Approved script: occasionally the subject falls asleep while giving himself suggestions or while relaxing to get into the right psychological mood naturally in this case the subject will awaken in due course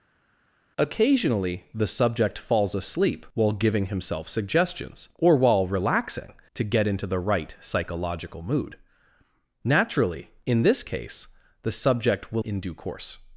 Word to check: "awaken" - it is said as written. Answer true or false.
false